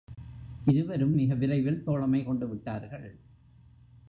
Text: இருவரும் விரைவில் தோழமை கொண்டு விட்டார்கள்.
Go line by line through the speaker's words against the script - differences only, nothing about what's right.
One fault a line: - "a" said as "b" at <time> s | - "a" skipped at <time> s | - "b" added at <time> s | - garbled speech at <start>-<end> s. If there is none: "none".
- "மிக" added at 1.1 s